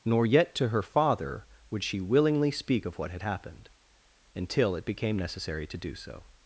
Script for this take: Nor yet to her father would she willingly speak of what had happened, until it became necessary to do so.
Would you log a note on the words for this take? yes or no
no